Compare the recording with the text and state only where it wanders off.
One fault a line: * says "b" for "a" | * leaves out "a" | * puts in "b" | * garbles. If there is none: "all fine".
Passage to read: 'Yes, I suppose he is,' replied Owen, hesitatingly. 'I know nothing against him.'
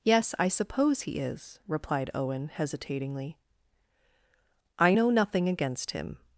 all fine